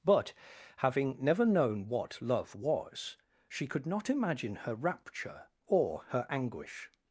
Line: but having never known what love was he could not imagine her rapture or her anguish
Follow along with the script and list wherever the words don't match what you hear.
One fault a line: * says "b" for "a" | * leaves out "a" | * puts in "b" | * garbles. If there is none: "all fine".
* says "she" for "he"